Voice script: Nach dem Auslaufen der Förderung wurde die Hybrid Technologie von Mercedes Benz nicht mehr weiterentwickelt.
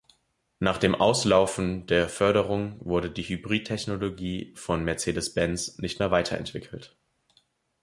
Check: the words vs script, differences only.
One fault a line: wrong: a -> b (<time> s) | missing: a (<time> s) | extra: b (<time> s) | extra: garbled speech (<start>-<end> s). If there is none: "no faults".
no faults